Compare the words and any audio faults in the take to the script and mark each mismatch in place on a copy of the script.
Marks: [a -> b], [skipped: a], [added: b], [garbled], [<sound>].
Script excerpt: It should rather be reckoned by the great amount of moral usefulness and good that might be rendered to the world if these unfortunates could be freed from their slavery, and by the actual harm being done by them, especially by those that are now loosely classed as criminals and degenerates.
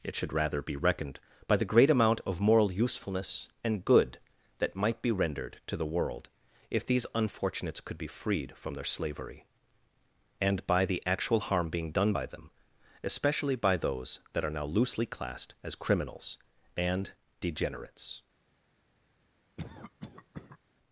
It should rather be reckoned by the great amount of moral usefulness and good that might be rendered to the world if these unfortunates could be freed from their slavery, and by the actual harm being done by them, especially by those that are now loosely classed as criminals and degenerates. [cough]